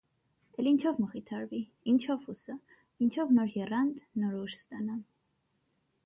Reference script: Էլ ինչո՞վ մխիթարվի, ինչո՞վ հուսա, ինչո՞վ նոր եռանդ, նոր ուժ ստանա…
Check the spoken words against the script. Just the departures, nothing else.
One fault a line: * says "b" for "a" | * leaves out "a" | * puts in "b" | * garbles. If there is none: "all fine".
all fine